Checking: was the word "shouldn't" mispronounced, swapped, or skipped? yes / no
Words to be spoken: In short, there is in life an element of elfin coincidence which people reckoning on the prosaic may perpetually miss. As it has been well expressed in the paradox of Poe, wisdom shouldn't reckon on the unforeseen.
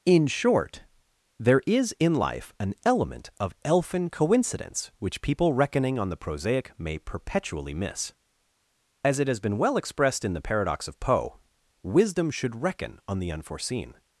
yes